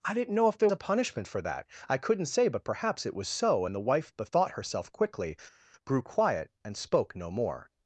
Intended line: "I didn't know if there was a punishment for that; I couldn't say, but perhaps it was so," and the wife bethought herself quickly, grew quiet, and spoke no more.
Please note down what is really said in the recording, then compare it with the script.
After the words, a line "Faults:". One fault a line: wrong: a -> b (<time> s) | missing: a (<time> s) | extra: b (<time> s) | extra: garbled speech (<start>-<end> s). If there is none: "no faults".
"I didn't know if there a punishment for that; I couldn't say, but perhaps it was so," and the wife bethought herself quickly, grew quiet, and spoke no more.
Faults:
missing: was (0.7 s)